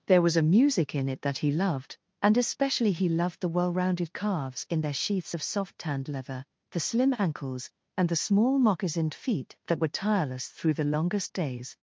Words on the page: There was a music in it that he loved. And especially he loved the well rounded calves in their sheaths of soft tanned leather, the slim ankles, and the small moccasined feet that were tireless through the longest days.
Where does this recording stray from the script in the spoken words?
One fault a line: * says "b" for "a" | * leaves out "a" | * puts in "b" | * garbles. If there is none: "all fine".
all fine